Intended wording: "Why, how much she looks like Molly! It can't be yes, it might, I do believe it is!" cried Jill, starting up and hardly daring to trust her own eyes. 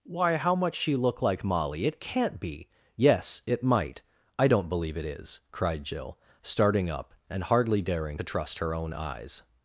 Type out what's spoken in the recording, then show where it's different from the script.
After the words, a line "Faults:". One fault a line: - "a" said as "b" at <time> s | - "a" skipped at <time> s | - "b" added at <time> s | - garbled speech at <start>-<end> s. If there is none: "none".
"Why, how much she look like Molly! It can't be yes, it might, I don't believe it is!" cried Jill, starting up and hardly daring to trust her own eyes.
Faults:
- "looks" said as "look" at 0.9 s
- "do" said as "don't" at 4.5 s